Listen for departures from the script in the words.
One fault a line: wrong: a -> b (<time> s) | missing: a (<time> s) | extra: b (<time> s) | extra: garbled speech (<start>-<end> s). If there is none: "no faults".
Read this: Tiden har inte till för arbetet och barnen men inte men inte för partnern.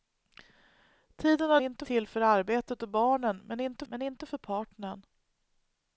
no faults